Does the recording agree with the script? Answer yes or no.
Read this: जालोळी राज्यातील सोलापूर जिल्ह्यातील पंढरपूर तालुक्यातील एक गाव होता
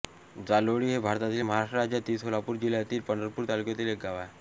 no